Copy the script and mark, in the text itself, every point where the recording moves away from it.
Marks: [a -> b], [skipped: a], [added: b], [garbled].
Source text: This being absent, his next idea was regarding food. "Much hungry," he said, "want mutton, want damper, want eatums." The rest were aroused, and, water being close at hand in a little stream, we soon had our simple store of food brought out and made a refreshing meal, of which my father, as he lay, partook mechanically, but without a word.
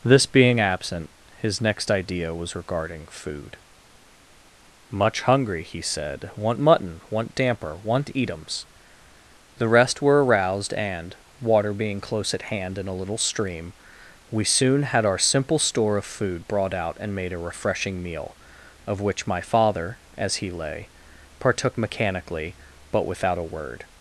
This being absent, his next idea was regarding food. "Much hungry," he said, "want mutton, want damper, want eatums." The rest were aroused, and, water being close at hand in a little stream, we soon had our simple store of food brought out and made a refreshing meal, of which my father, as he lay, partook mechanically, but without a word.